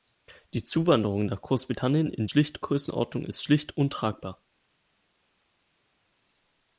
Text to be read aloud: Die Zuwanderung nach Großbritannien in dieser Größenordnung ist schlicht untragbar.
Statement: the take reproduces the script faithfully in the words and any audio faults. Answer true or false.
false